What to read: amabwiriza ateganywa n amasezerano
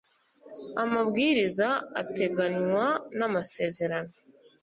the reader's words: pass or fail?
pass